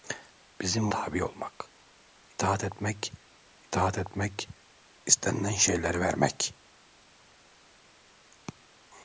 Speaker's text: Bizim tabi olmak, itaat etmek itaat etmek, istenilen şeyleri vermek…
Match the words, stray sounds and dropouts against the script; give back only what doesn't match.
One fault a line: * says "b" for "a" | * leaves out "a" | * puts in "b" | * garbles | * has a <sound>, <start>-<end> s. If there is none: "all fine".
all fine